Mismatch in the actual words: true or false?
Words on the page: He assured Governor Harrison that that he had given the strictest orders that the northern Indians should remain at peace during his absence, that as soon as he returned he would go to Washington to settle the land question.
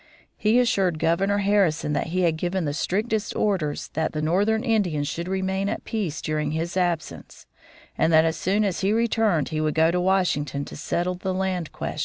true